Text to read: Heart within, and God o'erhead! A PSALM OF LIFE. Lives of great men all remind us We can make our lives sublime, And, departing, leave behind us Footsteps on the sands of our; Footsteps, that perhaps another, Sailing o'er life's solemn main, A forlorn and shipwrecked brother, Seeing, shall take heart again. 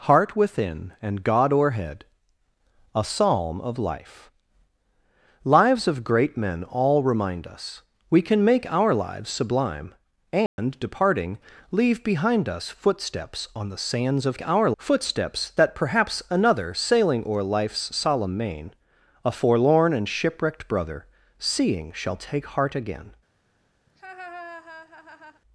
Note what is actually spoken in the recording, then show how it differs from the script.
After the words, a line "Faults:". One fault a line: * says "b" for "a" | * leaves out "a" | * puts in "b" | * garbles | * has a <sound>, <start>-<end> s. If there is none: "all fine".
Heart within, and God o'erhead! A PSALM OF LIFE. Lives of great men all remind us We can make our lives sublime, And, departing, leave behind us Footsteps on the sands of our; Footsteps, that perhaps another, Sailing o'er life's solemn main, A forlorn and shipwrecked brother, Seeing, shall take heart again.
Faults:
* has a dropout, 10.5-10.6 s
* has a laugh, 23.9-25.4 s